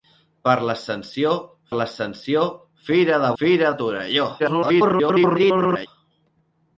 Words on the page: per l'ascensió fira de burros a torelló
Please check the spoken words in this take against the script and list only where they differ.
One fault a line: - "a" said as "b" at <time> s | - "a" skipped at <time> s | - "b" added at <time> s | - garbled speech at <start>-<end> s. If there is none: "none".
- "l'ascensió" added at 1.8 s
- "burros" said as "fira" at 3.4 s
- garbled speech at 4.4-5.9 s